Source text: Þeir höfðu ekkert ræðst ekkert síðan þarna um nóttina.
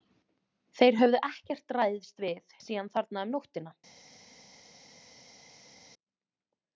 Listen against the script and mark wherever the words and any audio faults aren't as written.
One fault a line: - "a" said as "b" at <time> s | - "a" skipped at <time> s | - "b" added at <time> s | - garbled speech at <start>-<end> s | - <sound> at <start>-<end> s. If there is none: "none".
- "ekkert" said as "við" at 2.3 s